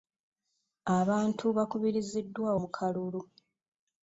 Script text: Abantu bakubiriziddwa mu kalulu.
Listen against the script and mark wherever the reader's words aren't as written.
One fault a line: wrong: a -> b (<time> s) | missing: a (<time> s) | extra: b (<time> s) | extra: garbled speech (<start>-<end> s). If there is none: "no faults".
no faults